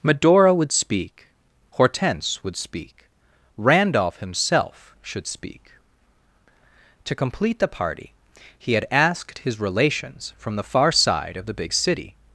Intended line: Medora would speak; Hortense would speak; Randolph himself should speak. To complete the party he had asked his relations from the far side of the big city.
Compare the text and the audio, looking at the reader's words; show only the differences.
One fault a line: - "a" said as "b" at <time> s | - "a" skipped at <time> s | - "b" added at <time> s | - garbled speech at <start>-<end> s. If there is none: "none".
none